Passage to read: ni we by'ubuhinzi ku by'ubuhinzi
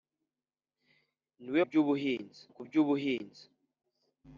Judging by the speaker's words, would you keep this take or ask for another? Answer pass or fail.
pass